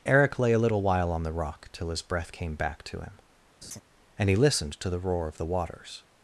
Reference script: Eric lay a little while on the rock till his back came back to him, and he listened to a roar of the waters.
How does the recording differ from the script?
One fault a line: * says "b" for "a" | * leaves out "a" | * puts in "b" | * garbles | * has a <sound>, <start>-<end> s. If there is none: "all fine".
* says "breath" for "back"
* has a laugh, 3.6-3.8 s
* says "the" for "a"